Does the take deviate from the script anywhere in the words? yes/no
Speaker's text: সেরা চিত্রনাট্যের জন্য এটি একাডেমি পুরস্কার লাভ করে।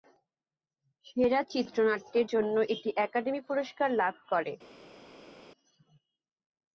no